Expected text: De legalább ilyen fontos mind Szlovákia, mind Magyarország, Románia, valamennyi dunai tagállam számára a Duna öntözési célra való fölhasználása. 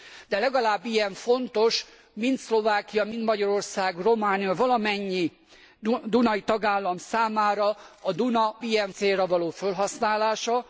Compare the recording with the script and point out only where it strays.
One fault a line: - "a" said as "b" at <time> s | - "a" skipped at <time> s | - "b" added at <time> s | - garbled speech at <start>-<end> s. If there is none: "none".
- "öntözési" said as "ilyen" at 8.6 s